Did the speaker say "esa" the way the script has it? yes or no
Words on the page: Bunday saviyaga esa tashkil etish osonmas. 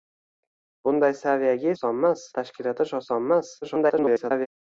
no